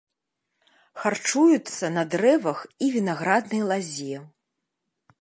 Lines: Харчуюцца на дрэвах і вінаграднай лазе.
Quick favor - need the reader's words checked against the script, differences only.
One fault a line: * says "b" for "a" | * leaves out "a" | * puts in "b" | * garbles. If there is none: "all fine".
all fine